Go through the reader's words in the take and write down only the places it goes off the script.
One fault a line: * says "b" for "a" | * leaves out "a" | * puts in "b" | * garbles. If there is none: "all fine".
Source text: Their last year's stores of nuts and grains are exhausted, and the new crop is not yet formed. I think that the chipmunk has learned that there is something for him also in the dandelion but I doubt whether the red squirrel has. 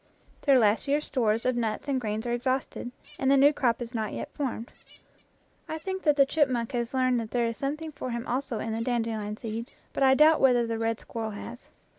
* puts in "seed"